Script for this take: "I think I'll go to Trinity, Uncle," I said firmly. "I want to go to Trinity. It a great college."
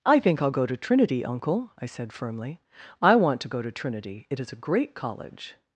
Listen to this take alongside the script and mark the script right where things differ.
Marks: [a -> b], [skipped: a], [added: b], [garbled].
"I think I'll go to Trinity, Uncle," I said firmly. "I want to go to Trinity. It [added: is] a great college."